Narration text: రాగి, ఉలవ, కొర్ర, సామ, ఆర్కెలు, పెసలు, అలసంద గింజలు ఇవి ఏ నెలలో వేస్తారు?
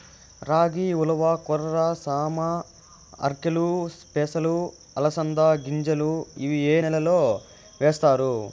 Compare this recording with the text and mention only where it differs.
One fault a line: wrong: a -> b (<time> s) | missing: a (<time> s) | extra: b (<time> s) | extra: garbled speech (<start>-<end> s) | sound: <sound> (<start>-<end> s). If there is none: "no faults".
no faults